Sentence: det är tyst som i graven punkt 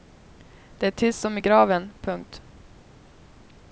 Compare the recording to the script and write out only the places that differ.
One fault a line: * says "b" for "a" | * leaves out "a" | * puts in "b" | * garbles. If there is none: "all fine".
all fine